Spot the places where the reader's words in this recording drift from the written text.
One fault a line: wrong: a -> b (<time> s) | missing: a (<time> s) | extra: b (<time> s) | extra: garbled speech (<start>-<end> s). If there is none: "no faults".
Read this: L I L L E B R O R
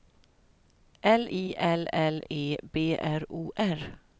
no faults